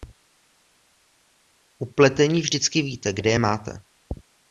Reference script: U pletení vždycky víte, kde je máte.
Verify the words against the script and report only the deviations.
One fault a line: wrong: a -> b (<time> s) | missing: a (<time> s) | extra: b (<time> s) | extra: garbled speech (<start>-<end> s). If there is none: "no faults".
no faults